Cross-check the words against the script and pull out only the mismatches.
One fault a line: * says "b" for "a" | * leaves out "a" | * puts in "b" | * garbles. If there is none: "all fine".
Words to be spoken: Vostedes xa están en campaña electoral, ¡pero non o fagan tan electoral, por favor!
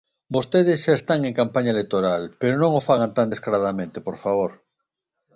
* says "descaradamente" for "electoral"